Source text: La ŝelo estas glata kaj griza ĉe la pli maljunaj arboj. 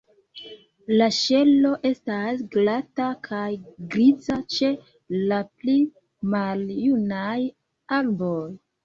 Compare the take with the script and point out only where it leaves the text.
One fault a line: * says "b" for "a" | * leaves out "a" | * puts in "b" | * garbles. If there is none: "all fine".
all fine